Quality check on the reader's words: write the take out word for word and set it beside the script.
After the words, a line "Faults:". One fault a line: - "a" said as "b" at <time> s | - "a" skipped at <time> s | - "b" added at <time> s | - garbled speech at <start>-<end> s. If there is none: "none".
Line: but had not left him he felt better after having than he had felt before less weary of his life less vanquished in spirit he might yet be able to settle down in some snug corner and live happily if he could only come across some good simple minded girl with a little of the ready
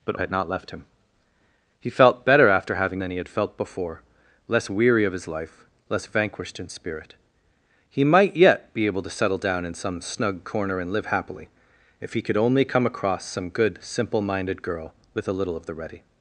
but had not left him he felt better after having than he had felt before less weary of his life less vanquished in spirit he might yet be able to settle down in some snug corner and live happily if he could only come across some good simple minded girl with a little of the ready
Faults:
none